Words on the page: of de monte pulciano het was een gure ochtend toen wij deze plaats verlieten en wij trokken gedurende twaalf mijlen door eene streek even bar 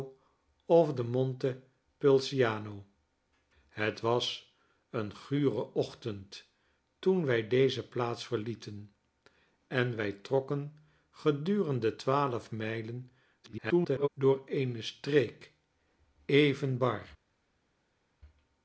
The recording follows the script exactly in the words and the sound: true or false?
false